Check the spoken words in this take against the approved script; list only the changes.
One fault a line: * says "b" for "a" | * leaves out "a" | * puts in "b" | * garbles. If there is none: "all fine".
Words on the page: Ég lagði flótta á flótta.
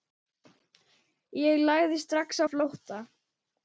* says "strax" for "flótta"